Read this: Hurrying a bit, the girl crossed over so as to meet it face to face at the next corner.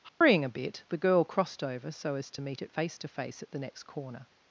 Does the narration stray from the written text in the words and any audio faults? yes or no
yes